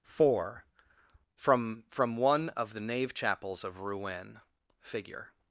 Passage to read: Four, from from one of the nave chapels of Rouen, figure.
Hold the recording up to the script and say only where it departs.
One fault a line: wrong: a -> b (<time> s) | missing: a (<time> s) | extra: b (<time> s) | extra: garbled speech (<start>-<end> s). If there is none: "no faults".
no faults